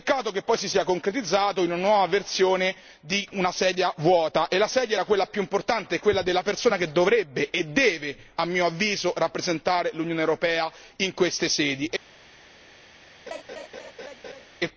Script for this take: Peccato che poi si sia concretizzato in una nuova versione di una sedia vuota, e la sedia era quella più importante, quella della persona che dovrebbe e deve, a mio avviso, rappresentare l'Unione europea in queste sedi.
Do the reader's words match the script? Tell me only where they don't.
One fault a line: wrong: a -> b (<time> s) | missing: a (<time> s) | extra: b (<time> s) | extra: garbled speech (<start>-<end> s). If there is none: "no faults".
no faults